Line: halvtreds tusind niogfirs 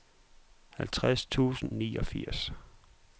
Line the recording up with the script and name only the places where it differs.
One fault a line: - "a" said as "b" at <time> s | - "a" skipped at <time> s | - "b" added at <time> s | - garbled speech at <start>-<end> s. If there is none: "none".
none